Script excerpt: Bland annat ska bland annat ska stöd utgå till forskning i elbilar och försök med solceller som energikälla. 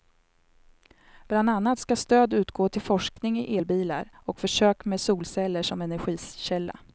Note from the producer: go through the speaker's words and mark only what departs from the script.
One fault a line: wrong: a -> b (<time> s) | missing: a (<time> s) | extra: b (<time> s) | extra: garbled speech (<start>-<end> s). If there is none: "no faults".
missing: bland annat ska (1.9 s)